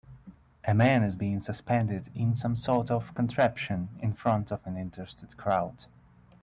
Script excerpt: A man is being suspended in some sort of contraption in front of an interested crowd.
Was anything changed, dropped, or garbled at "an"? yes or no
no